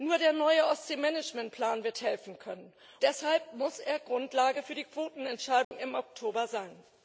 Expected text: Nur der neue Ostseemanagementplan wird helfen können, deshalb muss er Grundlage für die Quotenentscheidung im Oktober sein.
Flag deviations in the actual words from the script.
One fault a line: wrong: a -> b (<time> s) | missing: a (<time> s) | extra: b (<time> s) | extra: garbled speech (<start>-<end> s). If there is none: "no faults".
no faults